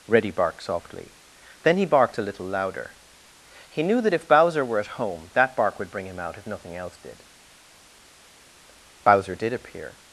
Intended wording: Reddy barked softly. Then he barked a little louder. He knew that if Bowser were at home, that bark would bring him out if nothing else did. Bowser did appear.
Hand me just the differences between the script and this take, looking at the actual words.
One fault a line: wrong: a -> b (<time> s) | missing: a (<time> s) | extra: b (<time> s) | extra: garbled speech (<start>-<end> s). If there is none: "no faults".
no faults